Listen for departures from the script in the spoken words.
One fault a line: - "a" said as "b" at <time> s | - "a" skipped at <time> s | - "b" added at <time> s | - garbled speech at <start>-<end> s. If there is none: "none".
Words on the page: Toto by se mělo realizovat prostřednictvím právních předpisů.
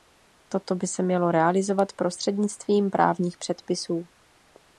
none